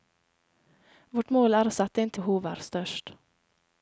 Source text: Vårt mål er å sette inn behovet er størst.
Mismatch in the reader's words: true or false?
false